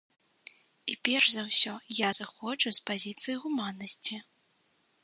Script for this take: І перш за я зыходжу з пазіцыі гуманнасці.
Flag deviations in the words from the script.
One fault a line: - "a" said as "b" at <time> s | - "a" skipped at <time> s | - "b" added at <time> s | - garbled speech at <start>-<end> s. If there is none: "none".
- "ўсё" added at 1.5 s